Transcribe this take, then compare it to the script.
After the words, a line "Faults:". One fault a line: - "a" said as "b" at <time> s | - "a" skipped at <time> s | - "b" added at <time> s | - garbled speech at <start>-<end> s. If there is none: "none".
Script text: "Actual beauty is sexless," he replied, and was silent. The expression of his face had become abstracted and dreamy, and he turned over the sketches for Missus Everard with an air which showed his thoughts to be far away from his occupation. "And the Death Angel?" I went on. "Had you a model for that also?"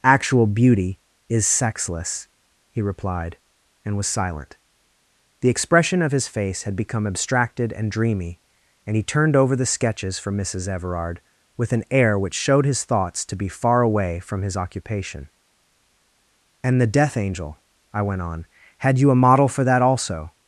"Actual beauty is sexless," he replied, and was silent. The expression of his face had become abstracted and dreamy, and he turned over the sketches for Missus Everard with an air which showed his thoughts to be far away from his occupation. "And the Death Angel?" I went on. "Had you a model for that also?"
Faults:
none